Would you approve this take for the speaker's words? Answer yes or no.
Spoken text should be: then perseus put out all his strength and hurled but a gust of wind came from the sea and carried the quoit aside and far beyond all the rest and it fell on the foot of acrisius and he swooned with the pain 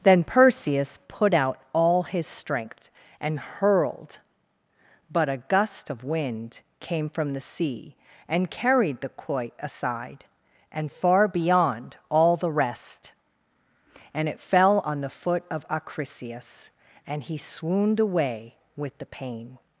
no